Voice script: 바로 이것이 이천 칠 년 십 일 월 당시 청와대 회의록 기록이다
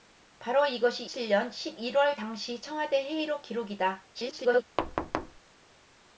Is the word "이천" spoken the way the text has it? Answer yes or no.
no